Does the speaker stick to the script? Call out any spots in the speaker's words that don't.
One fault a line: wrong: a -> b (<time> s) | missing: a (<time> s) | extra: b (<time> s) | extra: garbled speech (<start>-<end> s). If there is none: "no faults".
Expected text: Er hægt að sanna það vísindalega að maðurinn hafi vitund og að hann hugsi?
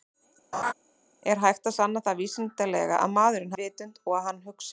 missing: hafi (3.6 s)